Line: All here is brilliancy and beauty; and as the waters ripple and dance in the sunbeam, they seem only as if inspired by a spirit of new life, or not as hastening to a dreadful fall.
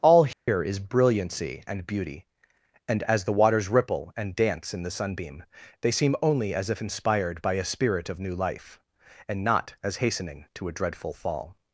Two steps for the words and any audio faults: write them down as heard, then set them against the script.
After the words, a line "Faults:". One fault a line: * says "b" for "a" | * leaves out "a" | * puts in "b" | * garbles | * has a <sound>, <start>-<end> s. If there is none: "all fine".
All here is brilliancy and beauty; and as the waters ripple and dance in the sunbeam, they seem only as if inspired by a spirit of new life, and not as hastening to a dreadful fall.
Faults:
* has a dropout, 0.3-0.5 s
* says "and" for "or"